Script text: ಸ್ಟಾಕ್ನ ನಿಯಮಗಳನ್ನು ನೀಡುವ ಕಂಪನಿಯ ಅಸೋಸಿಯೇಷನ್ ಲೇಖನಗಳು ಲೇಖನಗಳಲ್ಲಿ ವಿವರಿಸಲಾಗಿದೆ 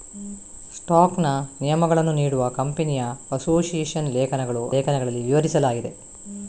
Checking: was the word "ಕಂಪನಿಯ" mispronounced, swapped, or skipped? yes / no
no